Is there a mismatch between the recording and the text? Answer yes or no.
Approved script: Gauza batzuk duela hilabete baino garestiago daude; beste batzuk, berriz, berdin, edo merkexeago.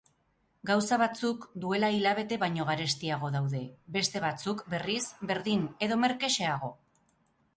no